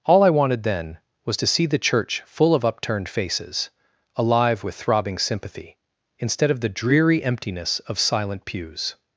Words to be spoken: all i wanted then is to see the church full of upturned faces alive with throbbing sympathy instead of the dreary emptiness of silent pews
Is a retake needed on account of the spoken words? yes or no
yes